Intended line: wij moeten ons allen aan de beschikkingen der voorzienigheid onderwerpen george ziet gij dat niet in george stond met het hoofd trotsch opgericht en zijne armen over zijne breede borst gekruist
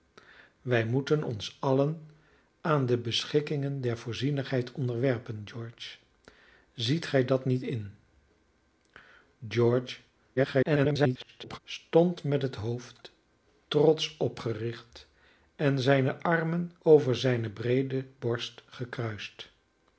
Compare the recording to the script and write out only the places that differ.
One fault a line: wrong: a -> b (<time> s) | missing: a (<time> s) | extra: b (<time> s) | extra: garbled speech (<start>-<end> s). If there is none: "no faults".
extra: garbled speech (10.4-11.6 s)